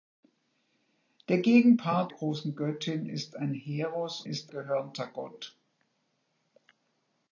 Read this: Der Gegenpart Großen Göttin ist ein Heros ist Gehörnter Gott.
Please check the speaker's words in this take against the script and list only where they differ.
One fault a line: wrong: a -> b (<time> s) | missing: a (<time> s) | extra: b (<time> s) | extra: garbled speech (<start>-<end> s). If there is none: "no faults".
no faults